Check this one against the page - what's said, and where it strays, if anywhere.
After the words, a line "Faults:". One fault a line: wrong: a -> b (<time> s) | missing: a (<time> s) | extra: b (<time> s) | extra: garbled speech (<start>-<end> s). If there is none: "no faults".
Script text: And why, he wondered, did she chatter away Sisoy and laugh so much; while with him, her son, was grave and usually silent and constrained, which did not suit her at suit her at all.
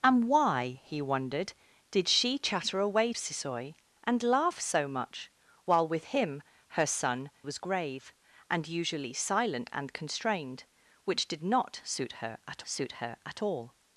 And why, he wondered, did she chatter away Sisoy and laugh so much; while with him, her son, was grave and usually silent and constrained, which did not suit her at suit her at all.
Faults:
no faults